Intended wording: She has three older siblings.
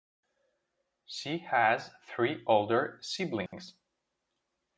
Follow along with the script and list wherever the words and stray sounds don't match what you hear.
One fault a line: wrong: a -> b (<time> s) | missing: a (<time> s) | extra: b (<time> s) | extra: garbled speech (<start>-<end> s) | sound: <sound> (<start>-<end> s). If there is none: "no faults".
sound: dropout (3.5-3.5 s)